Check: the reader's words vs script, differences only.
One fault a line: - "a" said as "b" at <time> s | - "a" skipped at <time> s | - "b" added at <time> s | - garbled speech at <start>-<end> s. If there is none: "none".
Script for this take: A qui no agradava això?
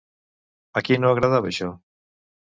none